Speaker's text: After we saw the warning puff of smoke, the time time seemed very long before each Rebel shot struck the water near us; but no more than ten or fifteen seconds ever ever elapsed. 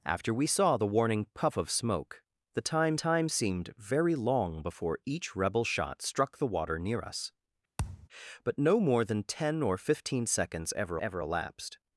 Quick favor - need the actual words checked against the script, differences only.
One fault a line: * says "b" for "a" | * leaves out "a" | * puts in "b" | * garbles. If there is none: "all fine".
all fine